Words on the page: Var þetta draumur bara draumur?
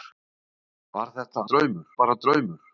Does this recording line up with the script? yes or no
yes